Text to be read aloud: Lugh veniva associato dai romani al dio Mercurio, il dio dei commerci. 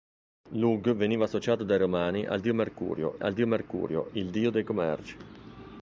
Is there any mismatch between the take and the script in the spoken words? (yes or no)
yes